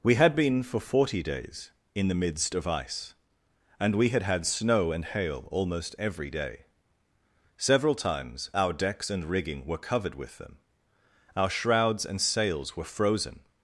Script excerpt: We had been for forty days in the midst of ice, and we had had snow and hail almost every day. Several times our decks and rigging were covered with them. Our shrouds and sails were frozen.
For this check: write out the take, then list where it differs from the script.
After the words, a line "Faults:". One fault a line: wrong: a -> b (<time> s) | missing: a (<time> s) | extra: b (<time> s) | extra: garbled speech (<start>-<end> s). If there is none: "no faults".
We had been for forty days in the midst of ice, and we had had snow and hail almost every day. Several times our decks and rigging were covered with them. Our shrouds and sails were frozen.
Faults:
no faults